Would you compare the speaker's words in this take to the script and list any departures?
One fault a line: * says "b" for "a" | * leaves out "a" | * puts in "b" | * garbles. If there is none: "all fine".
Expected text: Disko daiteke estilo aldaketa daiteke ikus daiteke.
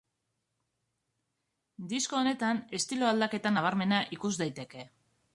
* says "honetan" for "daiteke"
* says "nabarmena" for "daiteke"